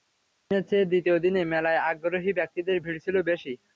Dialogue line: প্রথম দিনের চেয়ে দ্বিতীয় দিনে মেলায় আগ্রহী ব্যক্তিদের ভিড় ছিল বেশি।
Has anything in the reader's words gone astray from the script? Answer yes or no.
no